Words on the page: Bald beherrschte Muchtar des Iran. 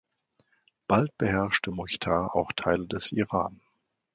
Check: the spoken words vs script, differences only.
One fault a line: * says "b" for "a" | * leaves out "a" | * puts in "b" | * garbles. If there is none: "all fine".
* puts in "auch Teile"